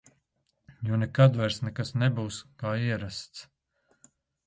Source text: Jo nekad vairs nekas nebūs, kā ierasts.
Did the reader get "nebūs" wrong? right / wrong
right